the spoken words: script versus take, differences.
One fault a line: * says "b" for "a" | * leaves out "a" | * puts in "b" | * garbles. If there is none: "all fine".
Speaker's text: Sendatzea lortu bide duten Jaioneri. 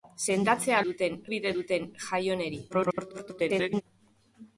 * says "duten" for "lortu"
* garbles